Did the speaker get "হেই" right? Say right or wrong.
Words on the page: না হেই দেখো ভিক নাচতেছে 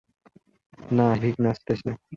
wrong